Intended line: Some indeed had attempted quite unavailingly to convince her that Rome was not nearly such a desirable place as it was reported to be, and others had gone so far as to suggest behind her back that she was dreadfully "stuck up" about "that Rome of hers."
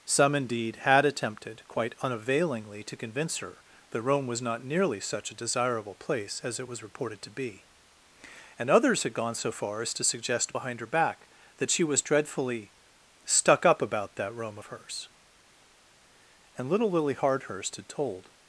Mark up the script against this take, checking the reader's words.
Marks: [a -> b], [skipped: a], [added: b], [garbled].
Some indeed had attempted quite unavailingly to convince her that Rome was not nearly such a desirable place as it was reported to be, and others had gone so far as to suggest behind her back that she was dreadfully "stuck up" about "that Rome of hers." [added: And little Lily Hardhurst had told]